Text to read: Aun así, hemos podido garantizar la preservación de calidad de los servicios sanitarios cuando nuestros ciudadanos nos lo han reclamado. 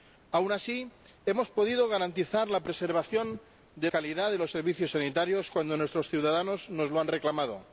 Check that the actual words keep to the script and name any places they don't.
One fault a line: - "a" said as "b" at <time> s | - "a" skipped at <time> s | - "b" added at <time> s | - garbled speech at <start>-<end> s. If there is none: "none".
none